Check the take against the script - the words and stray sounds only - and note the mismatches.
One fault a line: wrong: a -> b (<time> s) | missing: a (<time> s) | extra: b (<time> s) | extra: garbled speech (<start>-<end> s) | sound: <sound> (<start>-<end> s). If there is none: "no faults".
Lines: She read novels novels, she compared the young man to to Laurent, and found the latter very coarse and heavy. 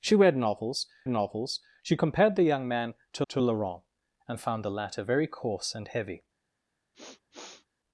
sound: sniff (6.9-7.7 s)